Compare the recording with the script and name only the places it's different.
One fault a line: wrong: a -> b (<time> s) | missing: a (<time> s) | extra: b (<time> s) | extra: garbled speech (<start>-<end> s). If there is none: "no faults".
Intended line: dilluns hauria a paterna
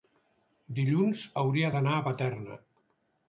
extra: d'anar (1.8 s)